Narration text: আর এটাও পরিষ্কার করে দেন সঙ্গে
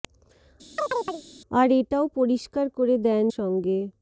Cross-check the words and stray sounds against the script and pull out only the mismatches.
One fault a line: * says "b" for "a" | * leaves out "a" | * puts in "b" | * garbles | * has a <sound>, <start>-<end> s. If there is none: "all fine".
* has a chirp, 0.8-1.2 s